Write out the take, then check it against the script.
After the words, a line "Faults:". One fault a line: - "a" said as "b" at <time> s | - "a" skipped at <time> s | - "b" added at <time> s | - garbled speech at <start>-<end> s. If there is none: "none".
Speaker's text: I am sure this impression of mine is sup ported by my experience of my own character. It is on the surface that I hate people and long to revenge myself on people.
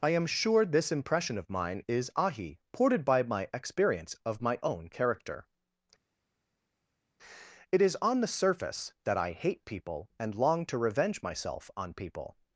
I am sure this impression of mine is ahi ported by my experience of my own character. It is on the surface that I hate people and long to revenge myself on people.
Faults:
- "sup" said as "ahi" at 2.1 s